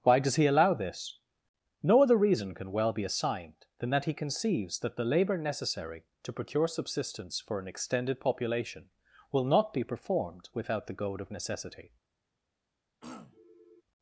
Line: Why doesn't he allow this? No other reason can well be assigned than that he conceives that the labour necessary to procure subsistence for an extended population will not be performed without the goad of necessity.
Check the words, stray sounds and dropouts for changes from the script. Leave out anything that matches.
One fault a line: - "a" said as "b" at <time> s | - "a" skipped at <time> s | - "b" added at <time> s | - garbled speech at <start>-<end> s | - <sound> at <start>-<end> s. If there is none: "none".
- "doesn't" said as "does" at 0.2 s
- throat clearing at 13.0-13.8 s